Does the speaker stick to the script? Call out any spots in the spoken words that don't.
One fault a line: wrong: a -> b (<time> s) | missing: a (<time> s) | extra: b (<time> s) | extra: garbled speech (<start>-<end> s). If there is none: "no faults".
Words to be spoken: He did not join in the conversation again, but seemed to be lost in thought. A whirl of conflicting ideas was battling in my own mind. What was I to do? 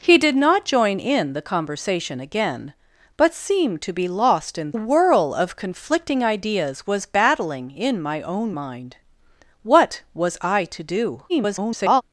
missing: thought A (4.7 s)
extra: garbled speech (11.3-12.0 s)